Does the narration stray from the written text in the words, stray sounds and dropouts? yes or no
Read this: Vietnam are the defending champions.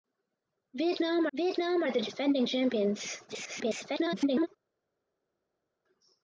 yes